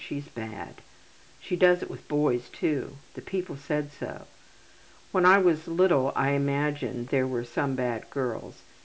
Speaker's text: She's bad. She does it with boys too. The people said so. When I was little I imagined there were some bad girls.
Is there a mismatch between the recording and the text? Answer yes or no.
no